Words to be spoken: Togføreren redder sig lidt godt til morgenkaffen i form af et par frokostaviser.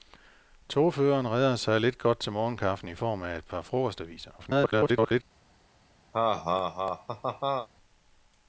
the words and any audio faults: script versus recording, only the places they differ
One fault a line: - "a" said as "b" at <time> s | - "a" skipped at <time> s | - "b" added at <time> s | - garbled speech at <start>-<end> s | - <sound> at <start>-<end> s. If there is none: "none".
- garbled speech at 4.4-5.2 s
- laugh at 6.1-7.7 s